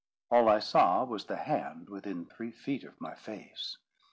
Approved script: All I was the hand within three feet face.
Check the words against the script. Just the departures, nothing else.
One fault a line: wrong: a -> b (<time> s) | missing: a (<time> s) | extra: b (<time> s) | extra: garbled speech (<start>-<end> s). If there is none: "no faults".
extra: saw (0.6 s)
extra: of my (2.8 s)